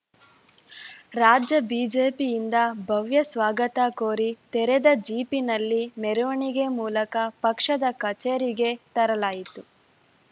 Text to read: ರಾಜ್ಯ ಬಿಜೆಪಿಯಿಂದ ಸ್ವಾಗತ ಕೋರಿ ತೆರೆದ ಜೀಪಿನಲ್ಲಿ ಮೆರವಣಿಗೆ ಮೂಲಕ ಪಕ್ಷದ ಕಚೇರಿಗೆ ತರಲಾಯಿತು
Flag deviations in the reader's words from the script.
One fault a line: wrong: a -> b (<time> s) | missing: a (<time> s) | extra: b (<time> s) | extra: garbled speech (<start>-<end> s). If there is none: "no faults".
extra: ಭವ್ಯ (2.9 s)